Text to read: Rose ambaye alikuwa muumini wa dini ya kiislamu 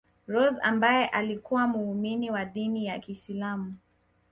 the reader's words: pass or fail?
pass